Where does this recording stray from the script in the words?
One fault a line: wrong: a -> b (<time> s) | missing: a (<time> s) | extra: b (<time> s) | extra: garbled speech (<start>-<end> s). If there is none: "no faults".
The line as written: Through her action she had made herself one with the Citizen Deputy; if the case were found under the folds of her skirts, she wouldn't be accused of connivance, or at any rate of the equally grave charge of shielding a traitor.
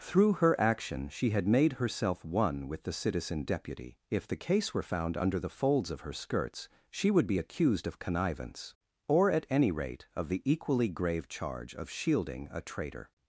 wrong: wouldn't -> would (7.1 s)